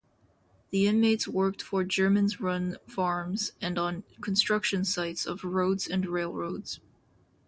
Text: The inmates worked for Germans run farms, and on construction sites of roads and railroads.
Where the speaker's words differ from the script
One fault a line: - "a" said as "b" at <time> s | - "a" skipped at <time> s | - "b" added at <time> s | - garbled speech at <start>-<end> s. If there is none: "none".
none